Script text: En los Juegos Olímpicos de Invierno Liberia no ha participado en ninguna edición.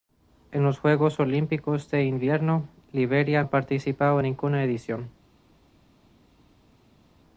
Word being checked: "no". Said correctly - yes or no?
no